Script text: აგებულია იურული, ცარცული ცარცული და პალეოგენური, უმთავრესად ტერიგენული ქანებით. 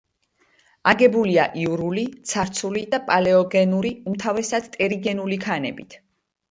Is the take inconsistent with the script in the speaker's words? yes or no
yes